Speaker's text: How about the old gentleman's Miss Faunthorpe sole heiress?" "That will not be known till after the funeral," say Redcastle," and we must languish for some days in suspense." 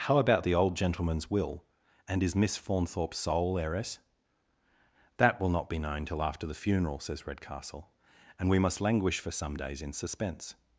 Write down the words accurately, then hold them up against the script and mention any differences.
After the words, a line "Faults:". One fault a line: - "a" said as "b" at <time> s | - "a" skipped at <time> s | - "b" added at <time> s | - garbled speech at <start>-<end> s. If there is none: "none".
How about the old gentleman's will? And is Miss Faunthorpe sole heiress?" "That will not be known till after the funeral," says Redcastle," and we must languish for some days in suspense."
Faults:
- "will And is" added at 1.3 s
- "say" said as "says" at 7.0 s